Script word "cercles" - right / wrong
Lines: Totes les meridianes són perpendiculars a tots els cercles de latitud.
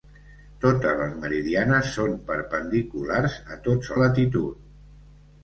wrong